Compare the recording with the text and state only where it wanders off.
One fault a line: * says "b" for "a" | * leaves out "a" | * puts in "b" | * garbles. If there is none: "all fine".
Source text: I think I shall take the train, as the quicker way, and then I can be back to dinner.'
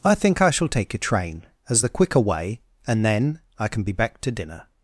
* says "a" for "the"